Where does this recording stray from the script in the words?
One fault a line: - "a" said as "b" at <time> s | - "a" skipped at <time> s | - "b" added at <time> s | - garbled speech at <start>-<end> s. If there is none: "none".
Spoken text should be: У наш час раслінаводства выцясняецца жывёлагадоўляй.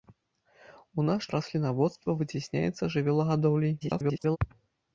- "час" skipped at 1.2 s
- garbled speech at 3.8-4.4 s